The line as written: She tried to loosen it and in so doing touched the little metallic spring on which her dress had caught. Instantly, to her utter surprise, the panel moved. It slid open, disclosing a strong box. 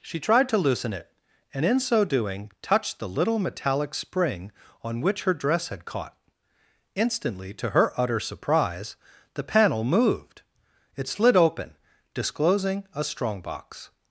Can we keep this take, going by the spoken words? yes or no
yes